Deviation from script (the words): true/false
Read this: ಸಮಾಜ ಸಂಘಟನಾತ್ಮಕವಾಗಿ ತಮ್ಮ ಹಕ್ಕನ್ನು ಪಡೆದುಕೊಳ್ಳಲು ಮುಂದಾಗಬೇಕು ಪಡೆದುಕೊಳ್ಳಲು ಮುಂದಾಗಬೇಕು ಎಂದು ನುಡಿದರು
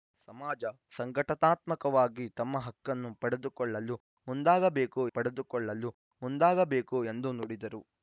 false